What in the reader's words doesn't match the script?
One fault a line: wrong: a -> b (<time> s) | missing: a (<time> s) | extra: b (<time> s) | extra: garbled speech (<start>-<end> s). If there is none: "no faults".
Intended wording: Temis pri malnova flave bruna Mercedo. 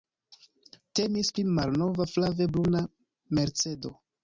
no faults